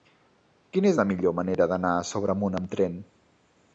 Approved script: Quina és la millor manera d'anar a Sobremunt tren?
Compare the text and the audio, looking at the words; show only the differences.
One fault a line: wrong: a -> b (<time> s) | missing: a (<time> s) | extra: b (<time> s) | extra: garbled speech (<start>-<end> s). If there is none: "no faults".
extra: amb (2.6 s)